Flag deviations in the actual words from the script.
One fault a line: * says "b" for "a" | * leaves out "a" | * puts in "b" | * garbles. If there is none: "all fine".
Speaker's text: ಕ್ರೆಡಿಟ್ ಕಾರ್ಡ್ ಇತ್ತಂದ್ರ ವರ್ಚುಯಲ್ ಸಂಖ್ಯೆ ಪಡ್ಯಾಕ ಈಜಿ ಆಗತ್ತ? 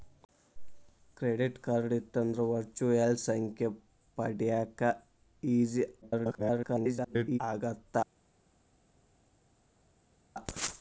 * garbles